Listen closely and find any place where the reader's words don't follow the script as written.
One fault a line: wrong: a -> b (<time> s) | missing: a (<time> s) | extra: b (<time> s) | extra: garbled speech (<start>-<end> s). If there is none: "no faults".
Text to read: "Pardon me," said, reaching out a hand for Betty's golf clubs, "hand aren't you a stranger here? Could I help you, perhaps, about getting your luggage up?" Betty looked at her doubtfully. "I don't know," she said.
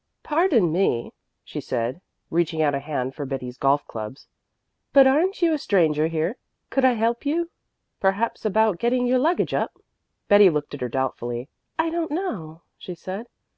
extra: she (1.4 s)
wrong: hand -> but (4.9 s)